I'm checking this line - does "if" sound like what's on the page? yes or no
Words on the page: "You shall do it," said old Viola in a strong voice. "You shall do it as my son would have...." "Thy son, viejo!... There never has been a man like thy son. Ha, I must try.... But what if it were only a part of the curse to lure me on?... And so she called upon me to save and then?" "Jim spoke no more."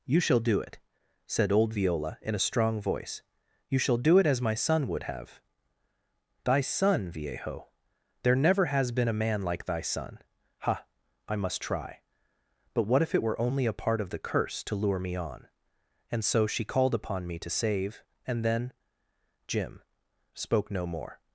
yes